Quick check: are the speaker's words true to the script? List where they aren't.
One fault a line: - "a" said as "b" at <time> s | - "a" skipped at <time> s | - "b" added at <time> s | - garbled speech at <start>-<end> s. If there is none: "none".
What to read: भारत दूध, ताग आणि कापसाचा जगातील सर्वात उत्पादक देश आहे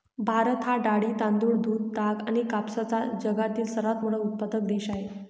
- "हा डाळी तांदूळ" added at 0.6 s
- "मोठा" added at 4.0 s